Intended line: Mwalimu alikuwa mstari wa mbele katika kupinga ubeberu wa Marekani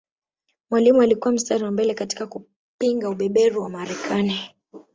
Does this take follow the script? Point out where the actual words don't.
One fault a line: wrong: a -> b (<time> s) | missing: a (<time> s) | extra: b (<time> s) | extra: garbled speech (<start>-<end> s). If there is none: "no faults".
no faults